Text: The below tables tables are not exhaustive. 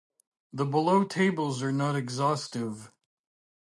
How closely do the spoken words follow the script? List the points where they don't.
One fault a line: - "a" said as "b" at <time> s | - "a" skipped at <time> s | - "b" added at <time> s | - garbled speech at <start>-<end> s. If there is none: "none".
- "tables" skipped at 1.6 s